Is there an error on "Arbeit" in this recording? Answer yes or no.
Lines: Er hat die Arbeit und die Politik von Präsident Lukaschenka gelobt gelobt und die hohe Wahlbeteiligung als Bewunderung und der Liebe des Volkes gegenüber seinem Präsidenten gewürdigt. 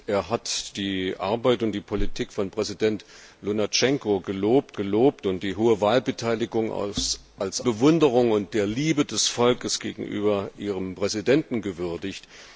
no